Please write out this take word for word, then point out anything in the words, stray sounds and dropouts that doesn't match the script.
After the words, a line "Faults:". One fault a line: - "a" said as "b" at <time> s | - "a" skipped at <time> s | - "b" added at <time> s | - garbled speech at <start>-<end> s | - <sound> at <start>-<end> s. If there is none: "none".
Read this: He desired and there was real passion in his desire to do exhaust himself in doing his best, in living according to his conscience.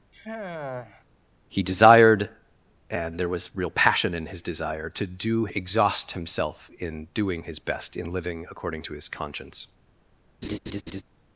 He desired and there was real passion in his desire to do exhaust himself in doing his best, in living according to his conscience.
Faults:
- sigh at 0.1-1.0 s
- laugh at 10.4-11.0 s